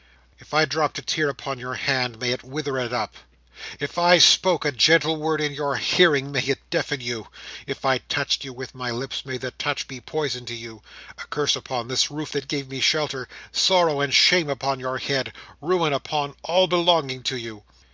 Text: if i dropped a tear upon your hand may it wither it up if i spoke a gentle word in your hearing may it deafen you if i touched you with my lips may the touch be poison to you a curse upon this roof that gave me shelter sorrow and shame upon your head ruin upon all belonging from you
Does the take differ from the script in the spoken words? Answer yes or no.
yes